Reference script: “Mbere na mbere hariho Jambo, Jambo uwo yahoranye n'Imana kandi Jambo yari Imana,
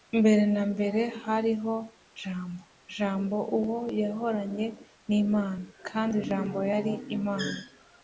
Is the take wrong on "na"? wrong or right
right